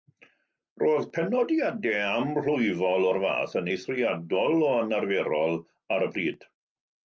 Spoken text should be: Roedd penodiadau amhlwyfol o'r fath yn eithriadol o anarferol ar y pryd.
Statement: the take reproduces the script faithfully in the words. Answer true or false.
true